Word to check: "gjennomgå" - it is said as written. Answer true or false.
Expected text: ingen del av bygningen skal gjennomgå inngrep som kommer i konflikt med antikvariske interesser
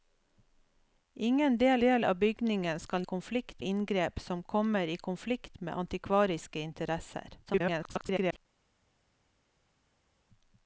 false